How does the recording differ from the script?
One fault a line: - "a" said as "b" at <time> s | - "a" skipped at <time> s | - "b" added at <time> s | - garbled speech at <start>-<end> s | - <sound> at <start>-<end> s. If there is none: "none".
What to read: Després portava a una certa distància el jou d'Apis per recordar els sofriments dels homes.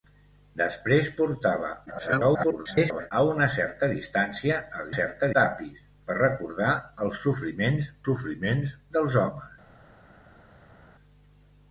- garbled speech at 1.9-3.1 s
- "jou" said as "certa" at 4.9 s
- "sofriments" added at 8.1 s